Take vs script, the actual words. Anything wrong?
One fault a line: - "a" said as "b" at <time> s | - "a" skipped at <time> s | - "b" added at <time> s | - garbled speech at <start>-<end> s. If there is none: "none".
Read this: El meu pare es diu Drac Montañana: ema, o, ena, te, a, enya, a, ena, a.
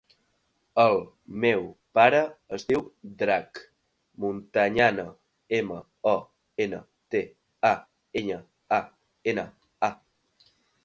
none